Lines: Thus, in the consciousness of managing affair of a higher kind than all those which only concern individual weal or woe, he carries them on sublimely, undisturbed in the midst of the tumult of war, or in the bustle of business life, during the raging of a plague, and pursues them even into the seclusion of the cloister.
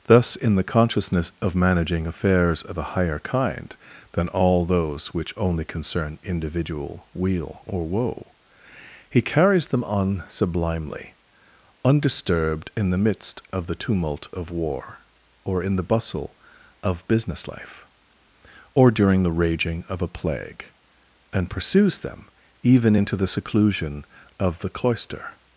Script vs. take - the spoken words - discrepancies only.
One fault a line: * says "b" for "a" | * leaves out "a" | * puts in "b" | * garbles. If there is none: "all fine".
* says "affairs" for "affair"
* puts in "or"